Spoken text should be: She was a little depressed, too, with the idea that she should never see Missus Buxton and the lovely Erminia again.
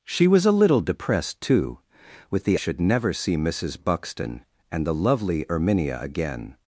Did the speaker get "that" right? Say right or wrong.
wrong